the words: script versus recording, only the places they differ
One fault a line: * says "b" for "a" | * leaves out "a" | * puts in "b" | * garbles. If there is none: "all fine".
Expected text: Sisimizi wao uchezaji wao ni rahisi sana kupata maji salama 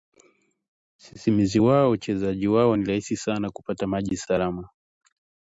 all fine